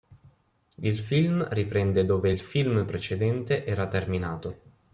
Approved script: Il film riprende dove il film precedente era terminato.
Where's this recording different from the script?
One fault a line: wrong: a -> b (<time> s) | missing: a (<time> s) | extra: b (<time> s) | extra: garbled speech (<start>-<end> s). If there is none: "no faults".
no faults